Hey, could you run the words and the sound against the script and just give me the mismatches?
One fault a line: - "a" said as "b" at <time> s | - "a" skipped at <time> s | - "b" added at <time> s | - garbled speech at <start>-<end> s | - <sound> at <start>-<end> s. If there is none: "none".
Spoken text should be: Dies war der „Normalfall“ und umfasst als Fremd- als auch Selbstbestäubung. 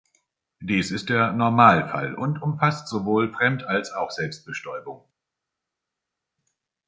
- "war" said as "ist" at 0.9 s
- "als" said as "sowohl" at 2.9 s